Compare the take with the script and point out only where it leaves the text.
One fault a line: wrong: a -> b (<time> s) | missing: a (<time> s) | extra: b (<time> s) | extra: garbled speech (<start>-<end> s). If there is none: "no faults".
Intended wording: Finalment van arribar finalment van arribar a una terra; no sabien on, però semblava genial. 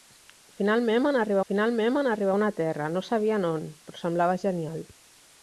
no faults